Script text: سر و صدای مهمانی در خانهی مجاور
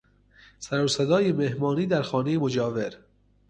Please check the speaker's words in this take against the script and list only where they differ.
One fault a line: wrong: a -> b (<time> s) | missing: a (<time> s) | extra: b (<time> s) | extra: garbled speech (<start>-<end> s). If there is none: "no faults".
no faults